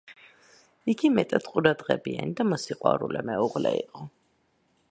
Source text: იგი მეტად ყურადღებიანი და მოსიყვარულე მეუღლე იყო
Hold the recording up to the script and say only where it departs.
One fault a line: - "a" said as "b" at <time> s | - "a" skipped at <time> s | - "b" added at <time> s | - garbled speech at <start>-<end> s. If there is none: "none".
none